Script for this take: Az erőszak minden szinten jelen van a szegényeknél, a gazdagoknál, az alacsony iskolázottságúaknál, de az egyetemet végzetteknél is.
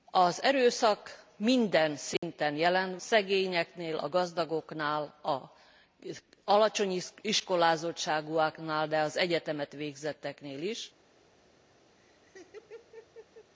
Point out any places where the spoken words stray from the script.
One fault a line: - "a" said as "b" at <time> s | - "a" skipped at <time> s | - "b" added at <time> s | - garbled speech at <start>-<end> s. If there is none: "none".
- "van a" skipped at 3.0 s